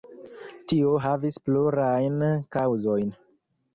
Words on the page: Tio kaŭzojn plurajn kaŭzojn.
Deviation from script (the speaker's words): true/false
true